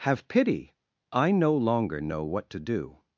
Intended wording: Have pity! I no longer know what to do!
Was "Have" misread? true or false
false